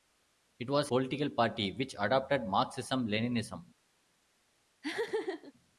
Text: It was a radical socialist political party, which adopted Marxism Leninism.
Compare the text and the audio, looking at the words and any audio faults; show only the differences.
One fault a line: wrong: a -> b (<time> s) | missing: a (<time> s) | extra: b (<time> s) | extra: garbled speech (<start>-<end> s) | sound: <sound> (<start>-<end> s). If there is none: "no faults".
missing: a radical socialist (0.9 s)
sound: laugh (4.8-5.5 s)